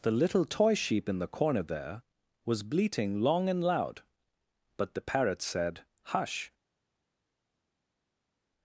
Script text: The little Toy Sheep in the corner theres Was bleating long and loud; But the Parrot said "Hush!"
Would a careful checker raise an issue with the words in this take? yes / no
yes